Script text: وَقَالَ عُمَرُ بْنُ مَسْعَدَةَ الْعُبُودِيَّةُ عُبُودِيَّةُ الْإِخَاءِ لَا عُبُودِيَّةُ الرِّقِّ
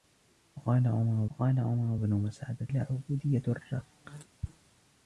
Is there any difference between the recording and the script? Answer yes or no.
yes